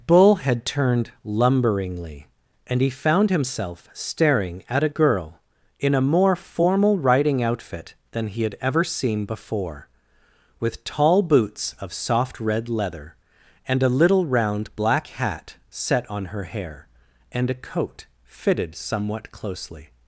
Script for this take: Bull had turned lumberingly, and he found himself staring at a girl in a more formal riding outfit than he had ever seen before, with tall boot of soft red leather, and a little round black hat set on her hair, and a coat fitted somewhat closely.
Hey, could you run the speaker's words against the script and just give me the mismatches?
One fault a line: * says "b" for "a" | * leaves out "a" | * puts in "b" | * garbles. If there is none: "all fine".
* says "boots" for "boot"